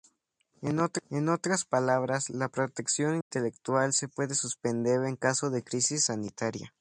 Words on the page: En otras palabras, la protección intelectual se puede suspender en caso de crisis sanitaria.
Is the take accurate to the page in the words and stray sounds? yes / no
no